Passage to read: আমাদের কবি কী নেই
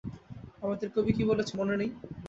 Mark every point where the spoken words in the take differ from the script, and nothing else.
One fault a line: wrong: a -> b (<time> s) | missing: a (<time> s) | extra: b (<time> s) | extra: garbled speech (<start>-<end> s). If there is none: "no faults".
extra: বলেছে মনে (1.3 s)